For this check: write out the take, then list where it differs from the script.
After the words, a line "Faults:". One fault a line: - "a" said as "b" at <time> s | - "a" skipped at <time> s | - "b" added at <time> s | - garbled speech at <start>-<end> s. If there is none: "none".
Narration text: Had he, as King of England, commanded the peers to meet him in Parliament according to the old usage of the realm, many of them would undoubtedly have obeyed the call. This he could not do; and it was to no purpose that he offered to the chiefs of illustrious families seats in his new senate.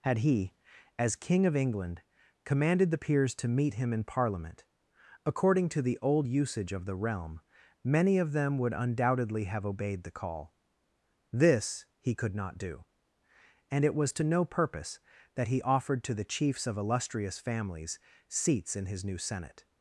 Had he, as King of England, commanded the peers to meet him in Parliament according to the old usage of the realm, many of them would undoubtedly have obeyed the call. This he could not do; and it was to no purpose that he offered to the chiefs of illustrious families seats in his new senate.
Faults:
none